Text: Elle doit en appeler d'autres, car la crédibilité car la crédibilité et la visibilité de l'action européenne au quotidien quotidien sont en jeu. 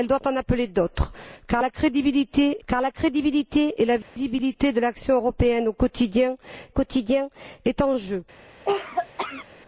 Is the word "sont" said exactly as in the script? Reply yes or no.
yes